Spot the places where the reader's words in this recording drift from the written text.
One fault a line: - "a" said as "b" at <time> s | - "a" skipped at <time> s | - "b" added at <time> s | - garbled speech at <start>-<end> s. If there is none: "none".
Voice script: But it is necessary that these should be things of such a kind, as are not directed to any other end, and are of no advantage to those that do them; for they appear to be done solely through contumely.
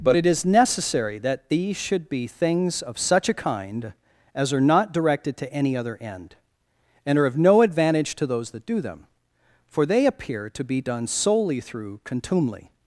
none